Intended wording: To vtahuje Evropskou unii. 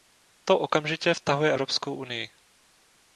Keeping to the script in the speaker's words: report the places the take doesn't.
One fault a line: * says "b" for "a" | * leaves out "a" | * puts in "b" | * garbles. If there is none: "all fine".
* puts in "okamžitě"